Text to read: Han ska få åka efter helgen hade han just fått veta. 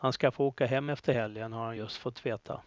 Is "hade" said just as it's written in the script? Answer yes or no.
no